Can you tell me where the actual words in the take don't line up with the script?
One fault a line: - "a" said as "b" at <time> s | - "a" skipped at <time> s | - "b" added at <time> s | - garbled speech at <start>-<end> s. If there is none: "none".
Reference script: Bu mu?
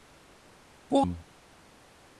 none